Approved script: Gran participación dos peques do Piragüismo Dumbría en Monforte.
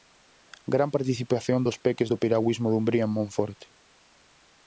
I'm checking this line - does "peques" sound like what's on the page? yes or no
yes